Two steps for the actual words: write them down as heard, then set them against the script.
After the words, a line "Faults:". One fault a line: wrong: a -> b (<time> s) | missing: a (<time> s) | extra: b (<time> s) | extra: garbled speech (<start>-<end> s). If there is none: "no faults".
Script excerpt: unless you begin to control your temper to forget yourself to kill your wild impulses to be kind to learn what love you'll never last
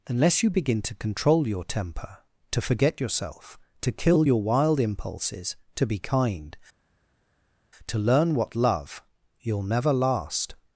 unless you begin to control your temper to forget yourself to kill your wild impulses to be kind to learn what love you'll never last
Faults:
no faults